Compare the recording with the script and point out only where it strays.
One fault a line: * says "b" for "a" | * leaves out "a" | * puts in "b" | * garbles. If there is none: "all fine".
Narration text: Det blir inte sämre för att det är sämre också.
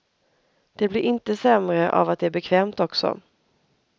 * says "av" for "för"
* says "bekvämt" for "sämre"